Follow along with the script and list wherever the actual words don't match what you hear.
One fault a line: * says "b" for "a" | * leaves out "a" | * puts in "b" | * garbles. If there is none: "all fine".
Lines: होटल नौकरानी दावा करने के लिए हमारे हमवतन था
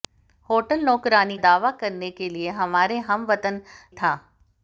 all fine